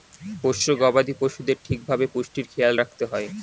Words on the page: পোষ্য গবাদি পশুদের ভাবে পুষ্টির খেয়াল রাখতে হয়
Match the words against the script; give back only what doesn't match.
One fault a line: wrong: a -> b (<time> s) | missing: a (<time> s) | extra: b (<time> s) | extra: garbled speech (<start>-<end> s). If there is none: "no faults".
extra: ঠিক (1.6 s)